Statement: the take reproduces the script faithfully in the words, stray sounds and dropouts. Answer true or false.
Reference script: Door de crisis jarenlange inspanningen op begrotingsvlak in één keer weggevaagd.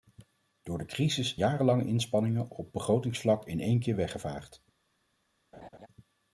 false